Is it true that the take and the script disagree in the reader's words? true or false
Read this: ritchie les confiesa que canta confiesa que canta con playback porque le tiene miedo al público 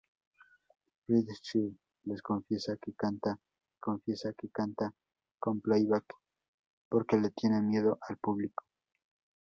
false